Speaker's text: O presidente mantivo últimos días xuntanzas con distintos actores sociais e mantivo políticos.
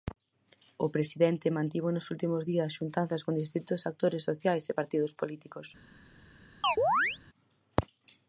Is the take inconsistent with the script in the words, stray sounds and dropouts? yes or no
yes